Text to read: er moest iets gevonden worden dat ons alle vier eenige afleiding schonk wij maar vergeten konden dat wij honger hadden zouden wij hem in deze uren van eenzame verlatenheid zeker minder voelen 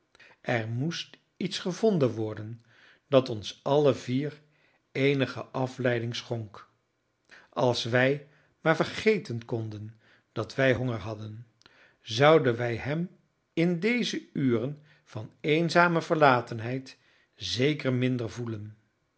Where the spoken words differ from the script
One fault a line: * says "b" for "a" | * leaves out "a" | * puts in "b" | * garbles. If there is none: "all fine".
* puts in "als"